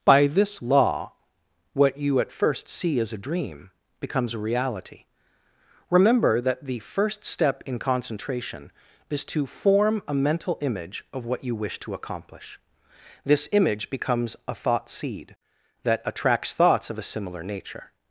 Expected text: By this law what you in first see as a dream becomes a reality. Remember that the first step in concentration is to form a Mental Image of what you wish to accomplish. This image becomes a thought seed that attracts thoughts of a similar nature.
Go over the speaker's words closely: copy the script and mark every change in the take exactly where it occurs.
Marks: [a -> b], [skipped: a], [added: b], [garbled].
By this law what you [in -> at] first see as a dream becomes a reality. Remember that the first step in concentration is to form a Mental Image of what you wish to accomplish. This image becomes a thought seed that attracts thoughts of a similar nature.